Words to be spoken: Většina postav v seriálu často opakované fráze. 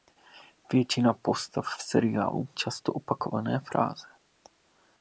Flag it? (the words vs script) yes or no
no